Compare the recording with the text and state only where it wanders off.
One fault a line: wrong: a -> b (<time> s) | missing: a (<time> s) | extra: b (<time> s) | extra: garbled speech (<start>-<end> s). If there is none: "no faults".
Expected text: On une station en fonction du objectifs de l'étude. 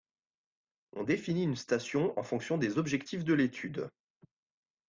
extra: définit (1.0 s)
wrong: du -> des (2.6 s)